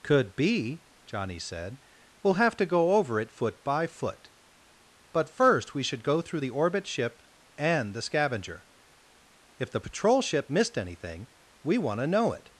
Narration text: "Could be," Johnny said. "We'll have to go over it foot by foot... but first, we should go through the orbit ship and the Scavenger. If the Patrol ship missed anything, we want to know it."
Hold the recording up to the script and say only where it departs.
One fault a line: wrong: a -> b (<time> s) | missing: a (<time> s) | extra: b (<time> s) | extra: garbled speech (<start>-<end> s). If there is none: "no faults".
no faults